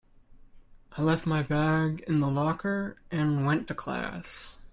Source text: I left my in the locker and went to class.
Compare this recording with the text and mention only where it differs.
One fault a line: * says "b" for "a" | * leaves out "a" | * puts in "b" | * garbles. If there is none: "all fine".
* puts in "bag"